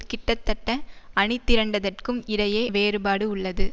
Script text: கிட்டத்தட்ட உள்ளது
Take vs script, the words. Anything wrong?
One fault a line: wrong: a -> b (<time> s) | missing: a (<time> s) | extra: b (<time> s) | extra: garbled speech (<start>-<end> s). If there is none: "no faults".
extra: அணிதிரண்டதற்கும் இடையே வேறுபாடு (1.2 s)